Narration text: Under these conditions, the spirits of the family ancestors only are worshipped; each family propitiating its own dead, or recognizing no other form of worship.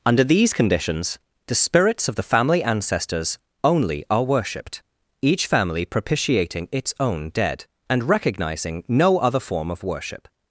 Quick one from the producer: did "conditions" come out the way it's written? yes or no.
yes